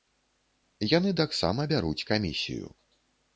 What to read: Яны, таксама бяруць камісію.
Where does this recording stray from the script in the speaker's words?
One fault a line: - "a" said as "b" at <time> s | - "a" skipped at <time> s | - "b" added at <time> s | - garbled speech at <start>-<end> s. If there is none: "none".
none